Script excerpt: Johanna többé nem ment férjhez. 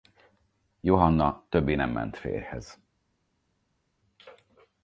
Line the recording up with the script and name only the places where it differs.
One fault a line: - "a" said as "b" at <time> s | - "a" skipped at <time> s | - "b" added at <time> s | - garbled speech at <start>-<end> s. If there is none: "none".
none